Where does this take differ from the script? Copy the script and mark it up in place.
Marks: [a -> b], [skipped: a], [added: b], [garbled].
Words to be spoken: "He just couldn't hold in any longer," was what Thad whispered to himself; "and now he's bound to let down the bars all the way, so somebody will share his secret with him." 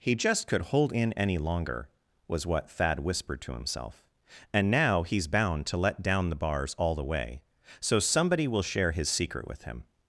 "He just [couldn't -> could] hold in any longer," was what Thad whispered to himself; "and now he's bound to let down the bars all the way, so somebody will share his secret with him."